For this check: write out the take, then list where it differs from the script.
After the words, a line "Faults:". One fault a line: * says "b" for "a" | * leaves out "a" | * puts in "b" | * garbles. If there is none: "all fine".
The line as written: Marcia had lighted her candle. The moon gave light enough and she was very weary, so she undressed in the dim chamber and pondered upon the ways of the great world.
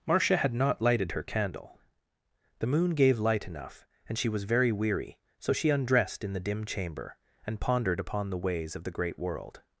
Marcia had not lighted her candle. The moon gave light enough and she was very weary, so she undressed in the dim chamber and pondered upon the ways of the great world.
Faults:
* puts in "not"